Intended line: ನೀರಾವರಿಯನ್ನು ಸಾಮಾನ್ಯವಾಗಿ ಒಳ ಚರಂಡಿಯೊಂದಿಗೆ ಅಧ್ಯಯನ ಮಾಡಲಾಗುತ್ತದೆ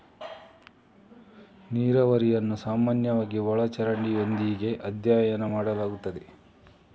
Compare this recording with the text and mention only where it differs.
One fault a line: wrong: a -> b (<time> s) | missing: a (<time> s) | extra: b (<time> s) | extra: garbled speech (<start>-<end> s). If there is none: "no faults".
no faults